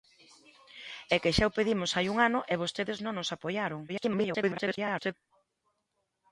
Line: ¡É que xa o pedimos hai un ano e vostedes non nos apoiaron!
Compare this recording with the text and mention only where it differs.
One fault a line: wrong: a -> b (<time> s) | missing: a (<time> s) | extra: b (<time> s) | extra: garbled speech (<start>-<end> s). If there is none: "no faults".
extra: garbled speech (3.9-5.1 s)